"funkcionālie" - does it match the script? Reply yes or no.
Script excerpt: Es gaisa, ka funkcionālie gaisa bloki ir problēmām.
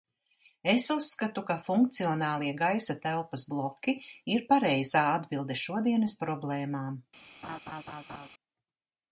yes